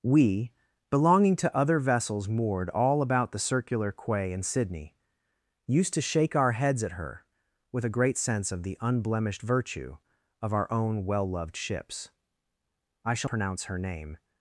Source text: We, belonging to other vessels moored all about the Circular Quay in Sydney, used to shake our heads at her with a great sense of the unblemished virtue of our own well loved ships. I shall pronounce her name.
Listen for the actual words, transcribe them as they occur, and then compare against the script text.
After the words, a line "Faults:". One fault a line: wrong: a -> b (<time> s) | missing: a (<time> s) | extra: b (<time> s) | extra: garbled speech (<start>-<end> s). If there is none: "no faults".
We, belonging to other vessels moored all about the Circular Quay in Sydney, used to shake our heads at her with a great sense of the unblemished virtue of our own well loved ships. I shall pronounce her name.
Faults:
no faults